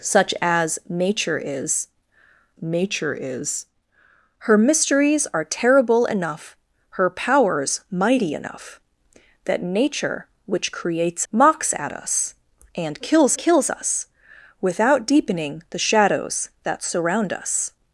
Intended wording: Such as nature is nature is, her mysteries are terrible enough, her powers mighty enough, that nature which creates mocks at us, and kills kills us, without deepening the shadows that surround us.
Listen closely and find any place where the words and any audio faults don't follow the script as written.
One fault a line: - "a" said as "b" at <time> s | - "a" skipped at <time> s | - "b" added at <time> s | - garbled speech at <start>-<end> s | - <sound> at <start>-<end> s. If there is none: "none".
none